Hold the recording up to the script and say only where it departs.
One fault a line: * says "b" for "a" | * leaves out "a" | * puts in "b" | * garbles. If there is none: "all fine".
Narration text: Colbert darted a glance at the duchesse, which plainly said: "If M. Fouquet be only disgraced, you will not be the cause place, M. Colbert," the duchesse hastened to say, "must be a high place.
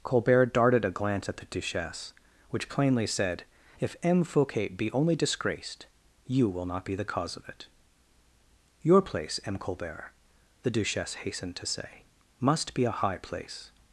* puts in "of it Your"